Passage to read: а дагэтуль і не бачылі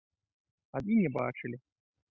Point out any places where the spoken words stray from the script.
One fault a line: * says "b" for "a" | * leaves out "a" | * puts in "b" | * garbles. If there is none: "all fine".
* leaves out "дагэтуль"